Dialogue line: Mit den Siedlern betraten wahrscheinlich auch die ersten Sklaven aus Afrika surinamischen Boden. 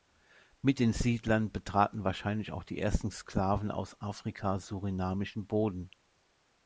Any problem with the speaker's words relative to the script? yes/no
no